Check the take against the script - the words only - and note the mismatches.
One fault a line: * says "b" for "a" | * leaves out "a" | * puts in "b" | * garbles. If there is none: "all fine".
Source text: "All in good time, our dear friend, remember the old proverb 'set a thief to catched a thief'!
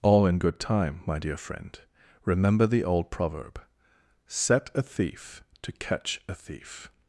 * says "my" for "our"
* says "catch" for "catched"